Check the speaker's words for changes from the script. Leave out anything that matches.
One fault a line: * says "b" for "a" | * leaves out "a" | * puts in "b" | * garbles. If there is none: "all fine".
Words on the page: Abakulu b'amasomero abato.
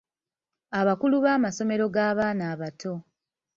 * puts in "g'abaana"